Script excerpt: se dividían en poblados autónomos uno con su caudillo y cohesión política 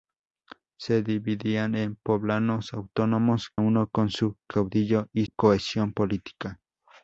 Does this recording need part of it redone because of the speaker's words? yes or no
no